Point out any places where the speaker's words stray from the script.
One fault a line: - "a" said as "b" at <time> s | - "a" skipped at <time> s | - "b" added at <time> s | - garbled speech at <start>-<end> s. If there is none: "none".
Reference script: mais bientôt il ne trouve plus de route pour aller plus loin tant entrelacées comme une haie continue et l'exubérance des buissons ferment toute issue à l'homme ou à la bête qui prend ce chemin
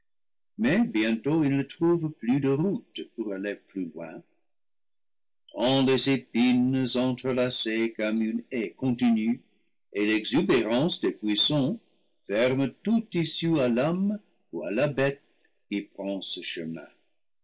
- "les épines" added at 5.8 s